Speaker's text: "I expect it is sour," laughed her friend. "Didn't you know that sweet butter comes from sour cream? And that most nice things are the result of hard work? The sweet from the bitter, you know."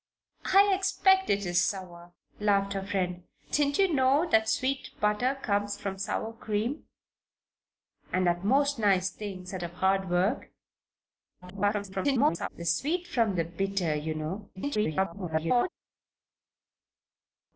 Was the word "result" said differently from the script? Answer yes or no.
yes